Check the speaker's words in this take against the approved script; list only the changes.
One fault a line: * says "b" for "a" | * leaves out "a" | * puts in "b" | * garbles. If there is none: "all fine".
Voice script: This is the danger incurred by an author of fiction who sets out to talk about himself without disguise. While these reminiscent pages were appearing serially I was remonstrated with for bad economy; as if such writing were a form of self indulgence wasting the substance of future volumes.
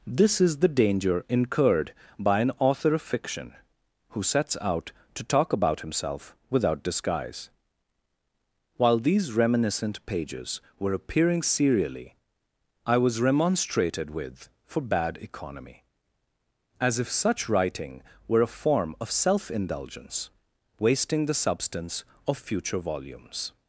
all fine